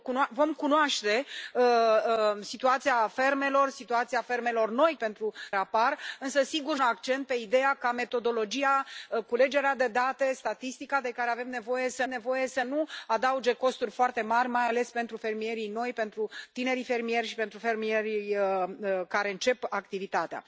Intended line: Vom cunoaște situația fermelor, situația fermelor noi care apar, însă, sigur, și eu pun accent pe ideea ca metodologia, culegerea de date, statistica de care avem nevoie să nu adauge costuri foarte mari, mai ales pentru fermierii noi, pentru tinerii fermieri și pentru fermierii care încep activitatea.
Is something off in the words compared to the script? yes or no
yes